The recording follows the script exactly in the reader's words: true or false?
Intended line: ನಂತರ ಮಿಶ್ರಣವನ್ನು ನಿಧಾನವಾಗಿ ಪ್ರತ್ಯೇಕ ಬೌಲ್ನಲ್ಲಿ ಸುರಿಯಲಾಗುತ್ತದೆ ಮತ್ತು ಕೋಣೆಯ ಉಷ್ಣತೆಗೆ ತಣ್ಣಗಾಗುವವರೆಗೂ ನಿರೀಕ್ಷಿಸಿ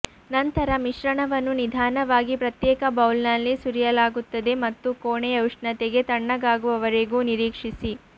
true